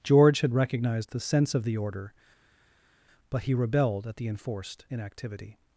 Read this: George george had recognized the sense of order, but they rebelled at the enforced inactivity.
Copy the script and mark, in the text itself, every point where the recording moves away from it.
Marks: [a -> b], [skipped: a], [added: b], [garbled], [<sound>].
George [skipped: george] had recognized the sense of [added: the] order, but [they -> he] rebelled at the enforced inactivity.